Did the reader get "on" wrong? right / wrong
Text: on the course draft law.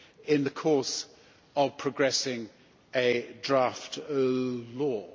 wrong